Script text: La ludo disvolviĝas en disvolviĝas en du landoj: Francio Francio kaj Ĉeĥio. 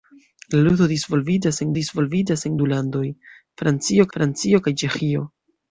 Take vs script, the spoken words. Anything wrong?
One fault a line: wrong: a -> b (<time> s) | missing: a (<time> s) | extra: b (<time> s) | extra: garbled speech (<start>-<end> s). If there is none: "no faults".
no faults